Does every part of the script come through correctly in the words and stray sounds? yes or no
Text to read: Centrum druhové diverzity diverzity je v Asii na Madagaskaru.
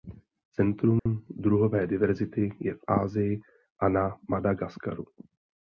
no